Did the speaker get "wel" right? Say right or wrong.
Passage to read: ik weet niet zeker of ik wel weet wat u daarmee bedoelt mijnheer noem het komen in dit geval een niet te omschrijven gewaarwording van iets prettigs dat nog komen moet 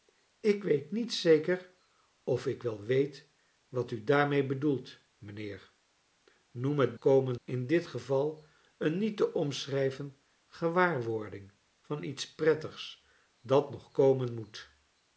right